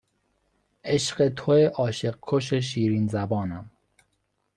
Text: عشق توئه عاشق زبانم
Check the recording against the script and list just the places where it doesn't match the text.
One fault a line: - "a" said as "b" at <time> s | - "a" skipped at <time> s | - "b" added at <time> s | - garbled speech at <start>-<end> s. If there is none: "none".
- "کش شیرین" added at 2.2 s